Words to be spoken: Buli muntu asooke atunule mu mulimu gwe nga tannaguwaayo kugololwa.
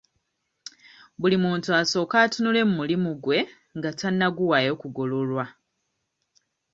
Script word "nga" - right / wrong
right